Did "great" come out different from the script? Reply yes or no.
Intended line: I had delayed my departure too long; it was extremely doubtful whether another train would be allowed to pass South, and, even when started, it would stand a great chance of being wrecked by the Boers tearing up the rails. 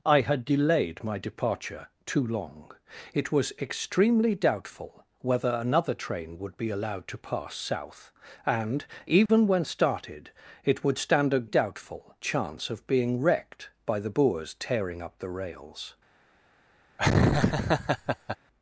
yes